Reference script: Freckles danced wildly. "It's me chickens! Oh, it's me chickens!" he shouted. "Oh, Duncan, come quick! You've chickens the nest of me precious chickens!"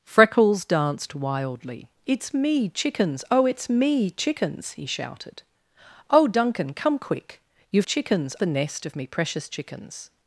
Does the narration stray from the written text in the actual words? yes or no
no